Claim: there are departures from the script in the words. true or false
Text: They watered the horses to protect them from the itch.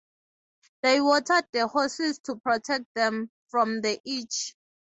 false